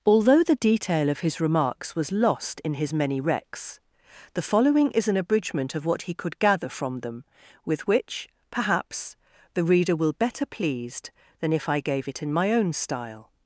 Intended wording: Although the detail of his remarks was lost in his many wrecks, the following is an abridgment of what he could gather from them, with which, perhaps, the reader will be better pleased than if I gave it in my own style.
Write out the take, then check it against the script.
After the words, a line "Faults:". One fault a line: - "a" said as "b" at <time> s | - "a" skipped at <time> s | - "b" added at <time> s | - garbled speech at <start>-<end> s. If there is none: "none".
Although the detail of his remarks was lost in his many wrecks, the following is an abridgment of what he could gather from them, with which, perhaps, the reader will better pleased than if I gave it in my own style.
Faults:
- "be" skipped at 10.1 s